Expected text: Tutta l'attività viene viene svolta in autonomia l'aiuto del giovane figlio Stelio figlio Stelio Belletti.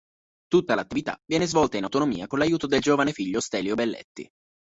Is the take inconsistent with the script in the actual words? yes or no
yes